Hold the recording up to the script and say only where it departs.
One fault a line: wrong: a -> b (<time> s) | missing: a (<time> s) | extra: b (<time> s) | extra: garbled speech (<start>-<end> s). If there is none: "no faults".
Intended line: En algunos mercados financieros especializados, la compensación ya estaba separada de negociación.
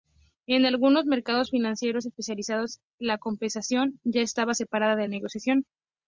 no faults